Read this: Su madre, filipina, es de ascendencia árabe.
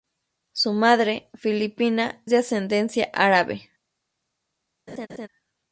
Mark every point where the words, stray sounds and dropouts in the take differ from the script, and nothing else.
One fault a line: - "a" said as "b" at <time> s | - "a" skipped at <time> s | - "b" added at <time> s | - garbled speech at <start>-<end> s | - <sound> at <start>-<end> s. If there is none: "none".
- "es" skipped at 2.2 s
- laugh at 4.9-5.3 s